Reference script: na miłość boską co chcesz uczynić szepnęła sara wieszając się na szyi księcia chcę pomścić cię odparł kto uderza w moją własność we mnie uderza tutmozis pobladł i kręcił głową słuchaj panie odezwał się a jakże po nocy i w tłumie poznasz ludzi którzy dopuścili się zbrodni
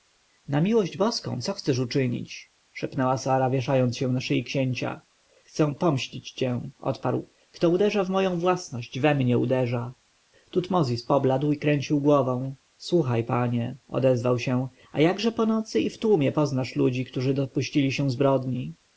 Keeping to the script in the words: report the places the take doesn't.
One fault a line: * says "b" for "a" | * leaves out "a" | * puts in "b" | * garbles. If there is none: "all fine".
all fine